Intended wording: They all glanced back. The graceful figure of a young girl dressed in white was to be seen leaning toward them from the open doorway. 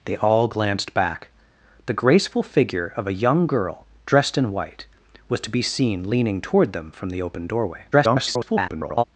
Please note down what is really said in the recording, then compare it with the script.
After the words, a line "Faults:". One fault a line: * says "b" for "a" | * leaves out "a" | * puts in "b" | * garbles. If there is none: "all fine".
They all glanced back. The graceful figure of a young girl dressed in white was to be seen leaning toward them from the open doorway. [garbled]
Faults:
* garbles